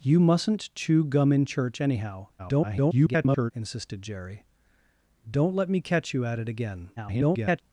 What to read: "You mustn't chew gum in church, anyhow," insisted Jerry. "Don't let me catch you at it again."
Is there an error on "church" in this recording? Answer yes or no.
no